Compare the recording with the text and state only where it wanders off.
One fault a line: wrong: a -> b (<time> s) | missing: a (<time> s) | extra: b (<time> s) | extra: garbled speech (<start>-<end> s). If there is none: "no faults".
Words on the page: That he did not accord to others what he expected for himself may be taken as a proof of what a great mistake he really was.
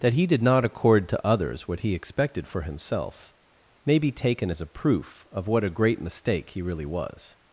no faults